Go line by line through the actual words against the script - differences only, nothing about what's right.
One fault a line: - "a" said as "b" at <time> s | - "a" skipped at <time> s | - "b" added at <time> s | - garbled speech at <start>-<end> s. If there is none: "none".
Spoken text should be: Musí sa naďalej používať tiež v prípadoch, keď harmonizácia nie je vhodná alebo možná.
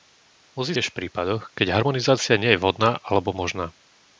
- "sa naďalej používať" skipped at 0.7 s